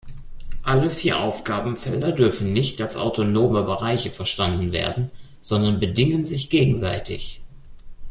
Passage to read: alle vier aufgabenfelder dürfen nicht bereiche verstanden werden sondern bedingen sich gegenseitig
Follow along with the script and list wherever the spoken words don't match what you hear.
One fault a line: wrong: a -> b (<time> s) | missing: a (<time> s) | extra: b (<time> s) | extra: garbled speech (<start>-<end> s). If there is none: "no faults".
extra: als autonome (2.8 s)